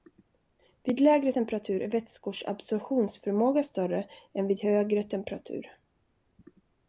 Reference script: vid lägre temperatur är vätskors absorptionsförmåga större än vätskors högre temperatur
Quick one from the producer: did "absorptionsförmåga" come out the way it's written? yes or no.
yes